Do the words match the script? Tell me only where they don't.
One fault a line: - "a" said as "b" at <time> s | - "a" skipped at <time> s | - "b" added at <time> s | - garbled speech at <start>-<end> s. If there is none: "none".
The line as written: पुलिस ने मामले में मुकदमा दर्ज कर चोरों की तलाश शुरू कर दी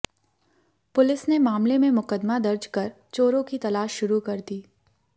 none